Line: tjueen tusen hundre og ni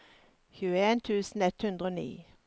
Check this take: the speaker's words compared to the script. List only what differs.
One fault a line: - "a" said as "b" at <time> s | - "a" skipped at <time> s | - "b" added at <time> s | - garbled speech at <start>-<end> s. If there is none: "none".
- "ett" added at 1.4 s